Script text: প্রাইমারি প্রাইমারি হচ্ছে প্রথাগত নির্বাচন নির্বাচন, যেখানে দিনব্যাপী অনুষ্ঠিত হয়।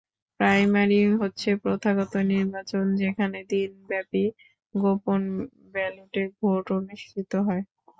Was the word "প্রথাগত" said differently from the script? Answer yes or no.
no